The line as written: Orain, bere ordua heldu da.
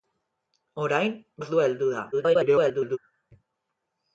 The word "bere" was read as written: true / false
false